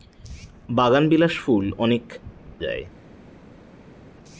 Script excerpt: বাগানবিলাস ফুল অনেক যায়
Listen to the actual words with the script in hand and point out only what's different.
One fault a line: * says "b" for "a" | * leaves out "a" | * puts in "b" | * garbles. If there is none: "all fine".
all fine